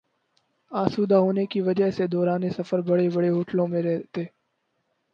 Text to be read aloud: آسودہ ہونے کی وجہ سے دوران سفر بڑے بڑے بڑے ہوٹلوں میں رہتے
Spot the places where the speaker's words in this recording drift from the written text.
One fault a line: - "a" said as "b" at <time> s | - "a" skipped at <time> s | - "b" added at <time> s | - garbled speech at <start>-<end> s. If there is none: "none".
- "بڑے" skipped at 3.3 s